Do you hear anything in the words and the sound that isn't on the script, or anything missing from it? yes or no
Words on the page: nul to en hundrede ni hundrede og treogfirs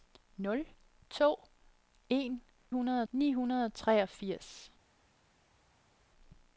no